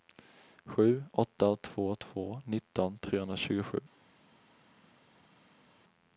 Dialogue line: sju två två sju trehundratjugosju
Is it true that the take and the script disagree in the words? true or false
true